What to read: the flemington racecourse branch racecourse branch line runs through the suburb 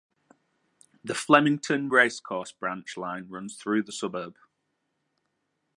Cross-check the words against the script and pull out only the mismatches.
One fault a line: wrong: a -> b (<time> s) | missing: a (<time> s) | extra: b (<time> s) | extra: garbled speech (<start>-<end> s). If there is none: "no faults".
missing: racecourse branch (3.0 s)